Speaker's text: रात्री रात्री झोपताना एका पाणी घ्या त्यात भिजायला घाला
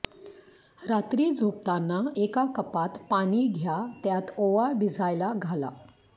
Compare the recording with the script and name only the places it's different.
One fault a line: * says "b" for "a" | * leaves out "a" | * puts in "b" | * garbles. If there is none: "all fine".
* leaves out "रात्री"
* puts in "कपात"
* puts in "ओवा"